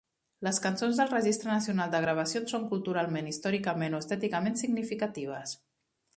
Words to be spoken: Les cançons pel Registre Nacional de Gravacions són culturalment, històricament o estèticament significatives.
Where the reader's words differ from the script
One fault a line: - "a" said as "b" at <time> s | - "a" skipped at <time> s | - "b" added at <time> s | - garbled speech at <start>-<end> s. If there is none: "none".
- "pel" said as "del" at 1.0 s